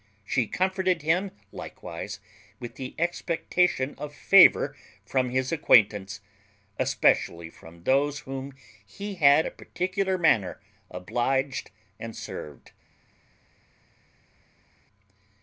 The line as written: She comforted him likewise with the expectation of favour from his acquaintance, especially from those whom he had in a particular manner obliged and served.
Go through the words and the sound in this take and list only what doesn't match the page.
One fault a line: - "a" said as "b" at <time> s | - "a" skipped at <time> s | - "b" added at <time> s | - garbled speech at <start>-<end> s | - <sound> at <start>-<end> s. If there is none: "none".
- "in" skipped at 9.5 s